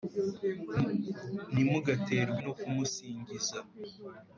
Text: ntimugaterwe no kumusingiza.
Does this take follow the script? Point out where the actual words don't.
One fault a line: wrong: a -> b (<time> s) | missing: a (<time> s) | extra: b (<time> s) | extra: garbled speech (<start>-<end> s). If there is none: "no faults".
no faults